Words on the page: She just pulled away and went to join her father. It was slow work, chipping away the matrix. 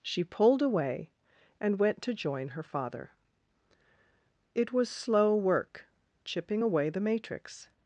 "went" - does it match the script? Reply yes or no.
yes